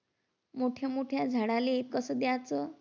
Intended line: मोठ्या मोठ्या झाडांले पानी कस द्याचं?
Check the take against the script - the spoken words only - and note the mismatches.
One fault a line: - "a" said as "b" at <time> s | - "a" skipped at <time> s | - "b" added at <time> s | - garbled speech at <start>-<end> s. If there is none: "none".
- "पानी" skipped at 1.8 s